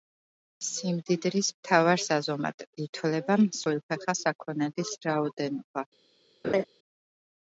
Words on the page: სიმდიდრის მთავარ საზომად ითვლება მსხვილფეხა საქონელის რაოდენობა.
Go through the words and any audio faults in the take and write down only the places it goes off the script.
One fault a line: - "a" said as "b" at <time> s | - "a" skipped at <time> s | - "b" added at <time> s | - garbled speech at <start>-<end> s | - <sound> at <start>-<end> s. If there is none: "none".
- laugh at 6.4-6.6 s